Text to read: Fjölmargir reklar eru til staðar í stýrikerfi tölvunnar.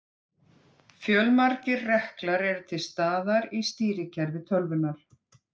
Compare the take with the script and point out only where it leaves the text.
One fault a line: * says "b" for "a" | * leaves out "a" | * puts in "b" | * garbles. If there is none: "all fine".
all fine